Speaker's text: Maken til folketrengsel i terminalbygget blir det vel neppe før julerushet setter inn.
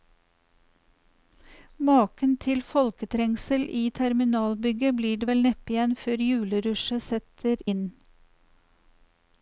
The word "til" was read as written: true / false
true